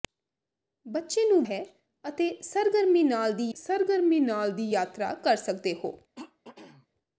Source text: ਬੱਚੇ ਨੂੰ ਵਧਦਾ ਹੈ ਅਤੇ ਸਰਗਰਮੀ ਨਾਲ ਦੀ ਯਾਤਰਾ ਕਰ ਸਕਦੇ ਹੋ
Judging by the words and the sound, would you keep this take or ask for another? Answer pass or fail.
fail